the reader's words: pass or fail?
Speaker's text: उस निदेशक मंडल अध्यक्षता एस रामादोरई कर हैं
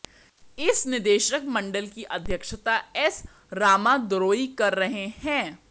fail